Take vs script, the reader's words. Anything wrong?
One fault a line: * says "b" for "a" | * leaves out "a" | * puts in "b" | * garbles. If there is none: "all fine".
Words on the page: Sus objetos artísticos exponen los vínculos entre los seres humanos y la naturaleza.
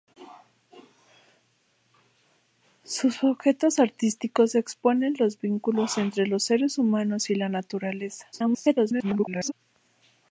* garbles